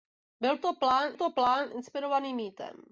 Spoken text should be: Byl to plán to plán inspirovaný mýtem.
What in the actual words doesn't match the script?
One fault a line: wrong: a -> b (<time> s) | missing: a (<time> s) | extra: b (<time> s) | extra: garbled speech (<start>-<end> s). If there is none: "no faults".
no faults